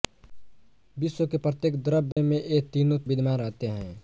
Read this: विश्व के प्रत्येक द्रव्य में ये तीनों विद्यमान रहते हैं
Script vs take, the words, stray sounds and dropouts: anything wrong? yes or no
yes